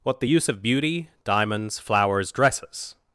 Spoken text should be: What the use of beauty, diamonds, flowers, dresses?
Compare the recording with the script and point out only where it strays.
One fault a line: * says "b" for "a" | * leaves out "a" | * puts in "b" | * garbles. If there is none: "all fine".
all fine